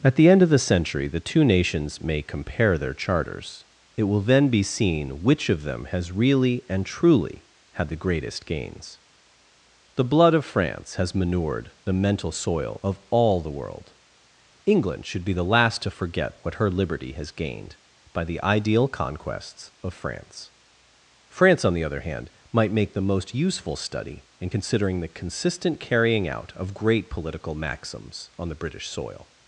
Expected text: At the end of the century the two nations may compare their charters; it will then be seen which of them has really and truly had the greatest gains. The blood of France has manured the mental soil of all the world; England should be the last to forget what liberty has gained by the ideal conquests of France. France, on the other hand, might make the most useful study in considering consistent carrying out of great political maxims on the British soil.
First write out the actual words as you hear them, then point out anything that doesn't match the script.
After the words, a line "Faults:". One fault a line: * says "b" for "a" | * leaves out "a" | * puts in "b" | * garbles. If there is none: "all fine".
At the end of the century the two nations may compare their charters; it will then be seen which of them has really and truly had the greatest gains. The blood of France has manured the mental soil of all the world; England should be the last to forget what her liberty has gained by the ideal conquests of France. France, on the other hand, might make the most useful study in considering the consistent carrying out of great political maxims on the British soil.
Faults:
* puts in "her"
* puts in "the"